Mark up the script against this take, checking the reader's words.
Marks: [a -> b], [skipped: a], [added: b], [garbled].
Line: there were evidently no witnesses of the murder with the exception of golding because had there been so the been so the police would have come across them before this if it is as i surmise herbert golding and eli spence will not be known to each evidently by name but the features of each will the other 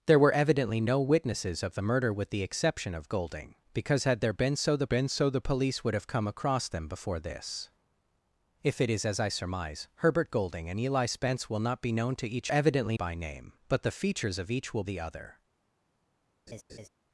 there were evidently no witnesses of the murder with the exception of golding because had there been so the been so the police would have come across them before this if it is as i surmise herbert golding and eli spence will not be known to each evidently by name but the features of each will the other